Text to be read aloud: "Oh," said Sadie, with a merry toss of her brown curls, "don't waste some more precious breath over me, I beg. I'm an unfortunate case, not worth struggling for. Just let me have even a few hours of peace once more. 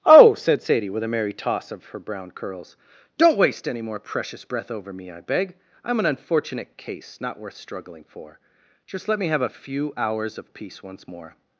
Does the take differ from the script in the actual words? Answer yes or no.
yes